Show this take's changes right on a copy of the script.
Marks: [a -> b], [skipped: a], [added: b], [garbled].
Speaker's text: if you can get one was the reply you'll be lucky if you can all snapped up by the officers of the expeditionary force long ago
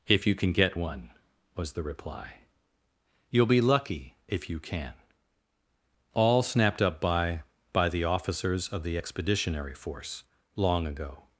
if you can get one was the reply you'll be lucky if you can all snapped up by [added: by] the officers of the expeditionary force long ago